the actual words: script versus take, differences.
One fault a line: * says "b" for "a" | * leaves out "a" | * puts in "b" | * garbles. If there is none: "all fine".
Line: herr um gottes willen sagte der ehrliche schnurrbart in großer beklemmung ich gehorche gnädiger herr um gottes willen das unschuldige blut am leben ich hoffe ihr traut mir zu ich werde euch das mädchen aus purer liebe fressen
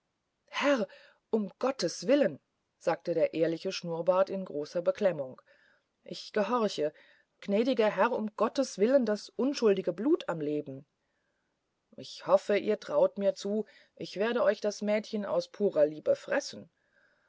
all fine